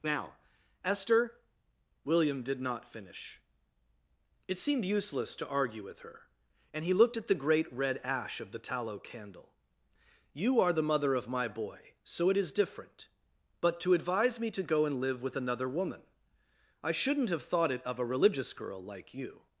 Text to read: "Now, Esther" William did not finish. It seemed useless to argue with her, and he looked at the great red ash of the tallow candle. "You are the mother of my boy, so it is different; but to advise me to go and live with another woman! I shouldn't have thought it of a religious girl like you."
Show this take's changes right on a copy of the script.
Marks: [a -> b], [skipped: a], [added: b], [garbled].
"Now, Esther" William did not finish. It seemed useless to argue with her, and he looked at the great red ash of the tallow candle. "You are the mother of my boy, so it is different; but to advise me to go and live with another woman! I shouldn't have thought it of a religious girl like you."